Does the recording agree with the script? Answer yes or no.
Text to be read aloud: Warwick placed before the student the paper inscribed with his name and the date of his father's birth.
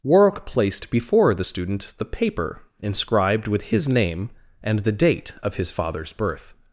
yes